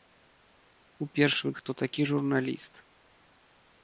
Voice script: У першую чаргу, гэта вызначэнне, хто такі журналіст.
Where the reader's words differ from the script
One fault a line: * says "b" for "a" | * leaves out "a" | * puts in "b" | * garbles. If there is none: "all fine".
* leaves out "чаргу гэта вызначэнне"